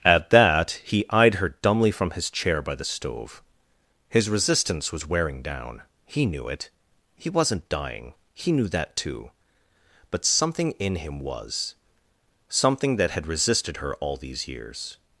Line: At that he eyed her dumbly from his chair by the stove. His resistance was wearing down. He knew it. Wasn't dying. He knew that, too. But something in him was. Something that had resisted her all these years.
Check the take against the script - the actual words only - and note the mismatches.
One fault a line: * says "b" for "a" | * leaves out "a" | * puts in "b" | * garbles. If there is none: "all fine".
* puts in "He"